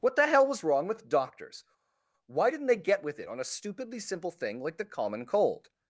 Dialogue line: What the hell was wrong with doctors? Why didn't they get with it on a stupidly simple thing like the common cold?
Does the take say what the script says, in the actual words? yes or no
yes